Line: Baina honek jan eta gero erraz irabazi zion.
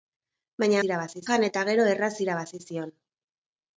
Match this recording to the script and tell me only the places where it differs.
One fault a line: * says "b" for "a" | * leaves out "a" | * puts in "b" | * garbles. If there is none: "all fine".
* says "irabazi" for "honek"